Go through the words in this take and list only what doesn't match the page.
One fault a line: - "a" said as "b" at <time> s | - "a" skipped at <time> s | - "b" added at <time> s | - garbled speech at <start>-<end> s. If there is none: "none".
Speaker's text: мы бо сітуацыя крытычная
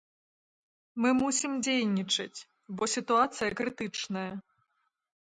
- "мусім дзейнічаць" added at 1.2 s